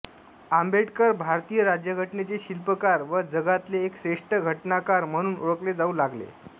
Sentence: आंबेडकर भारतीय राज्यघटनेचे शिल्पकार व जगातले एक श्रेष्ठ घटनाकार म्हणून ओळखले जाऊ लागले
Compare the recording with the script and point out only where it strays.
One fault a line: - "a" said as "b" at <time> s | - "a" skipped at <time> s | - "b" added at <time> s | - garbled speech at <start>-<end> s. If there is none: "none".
none